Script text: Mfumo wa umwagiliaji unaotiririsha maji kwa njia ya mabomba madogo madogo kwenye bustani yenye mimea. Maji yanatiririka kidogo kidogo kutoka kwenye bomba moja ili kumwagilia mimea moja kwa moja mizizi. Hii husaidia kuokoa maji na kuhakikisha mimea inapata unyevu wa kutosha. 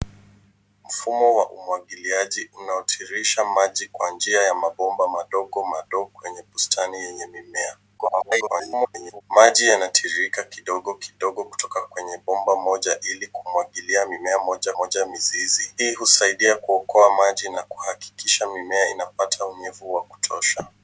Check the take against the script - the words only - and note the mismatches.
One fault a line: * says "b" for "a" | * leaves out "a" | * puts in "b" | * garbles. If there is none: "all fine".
* garbles
* leaves out "kwa"